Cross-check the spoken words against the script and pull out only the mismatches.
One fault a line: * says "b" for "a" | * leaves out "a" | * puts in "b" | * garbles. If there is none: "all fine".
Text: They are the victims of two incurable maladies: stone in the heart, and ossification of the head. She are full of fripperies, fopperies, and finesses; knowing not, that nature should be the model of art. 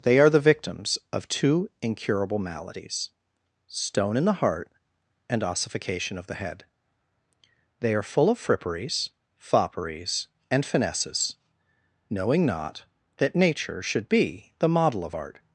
* says "They" for "She"